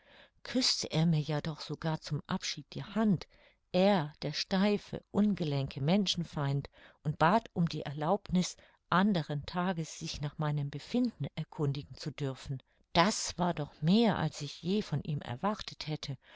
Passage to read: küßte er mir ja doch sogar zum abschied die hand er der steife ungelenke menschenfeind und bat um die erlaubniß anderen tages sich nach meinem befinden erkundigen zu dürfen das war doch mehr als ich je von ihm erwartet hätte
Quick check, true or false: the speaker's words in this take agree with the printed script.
true